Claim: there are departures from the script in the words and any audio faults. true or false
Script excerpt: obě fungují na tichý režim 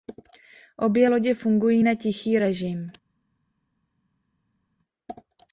true